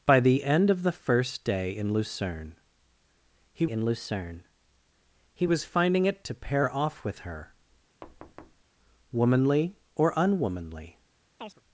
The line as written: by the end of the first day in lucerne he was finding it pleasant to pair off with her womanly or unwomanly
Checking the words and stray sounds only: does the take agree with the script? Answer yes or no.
no